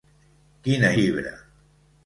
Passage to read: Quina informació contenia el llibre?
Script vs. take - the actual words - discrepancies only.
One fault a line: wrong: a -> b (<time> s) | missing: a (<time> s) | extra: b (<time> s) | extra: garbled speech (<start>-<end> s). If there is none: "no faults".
missing: informació contenia el (0.9 s)